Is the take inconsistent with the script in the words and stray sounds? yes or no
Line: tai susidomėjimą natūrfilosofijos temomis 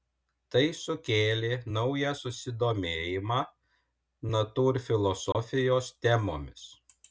yes